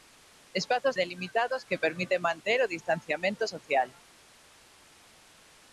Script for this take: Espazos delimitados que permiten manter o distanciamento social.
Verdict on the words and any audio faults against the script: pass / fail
pass